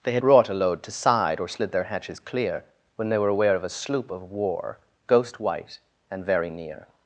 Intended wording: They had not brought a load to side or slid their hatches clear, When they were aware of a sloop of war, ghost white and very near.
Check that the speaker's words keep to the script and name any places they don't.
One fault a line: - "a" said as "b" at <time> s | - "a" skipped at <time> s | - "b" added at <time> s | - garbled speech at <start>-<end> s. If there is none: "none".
- "not" skipped at 0.2 s